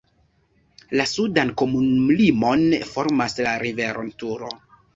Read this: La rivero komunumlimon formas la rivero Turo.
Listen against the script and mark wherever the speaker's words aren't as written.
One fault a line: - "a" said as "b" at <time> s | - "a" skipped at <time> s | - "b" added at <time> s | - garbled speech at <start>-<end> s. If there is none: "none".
- "rivero" said as "sudan" at 1.1 s